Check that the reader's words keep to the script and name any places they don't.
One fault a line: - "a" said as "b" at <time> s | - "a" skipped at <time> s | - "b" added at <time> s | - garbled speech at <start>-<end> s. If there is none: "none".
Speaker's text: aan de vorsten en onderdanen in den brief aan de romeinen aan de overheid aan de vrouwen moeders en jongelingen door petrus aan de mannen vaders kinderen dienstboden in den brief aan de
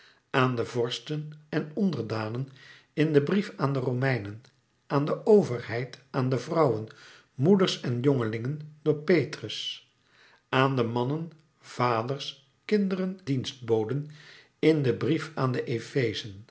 none